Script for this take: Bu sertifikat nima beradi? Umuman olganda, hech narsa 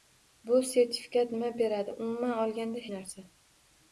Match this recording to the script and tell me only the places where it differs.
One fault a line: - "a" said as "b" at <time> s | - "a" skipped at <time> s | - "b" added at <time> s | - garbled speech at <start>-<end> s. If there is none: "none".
- "hech" skipped at 2.9 s